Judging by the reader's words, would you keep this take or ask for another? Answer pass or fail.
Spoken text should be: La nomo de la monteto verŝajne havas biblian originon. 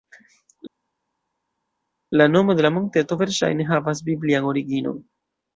pass